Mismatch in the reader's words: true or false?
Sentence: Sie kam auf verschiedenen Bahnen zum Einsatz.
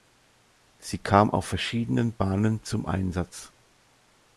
false